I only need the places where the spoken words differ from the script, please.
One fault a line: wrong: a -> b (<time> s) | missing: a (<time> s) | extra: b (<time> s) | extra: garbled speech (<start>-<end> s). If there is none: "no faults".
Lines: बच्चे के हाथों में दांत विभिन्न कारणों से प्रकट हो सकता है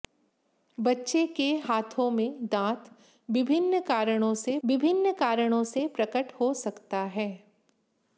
extra: विभिन्न कारणों से (4.6 s)